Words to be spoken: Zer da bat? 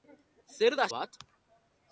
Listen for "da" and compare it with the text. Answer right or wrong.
right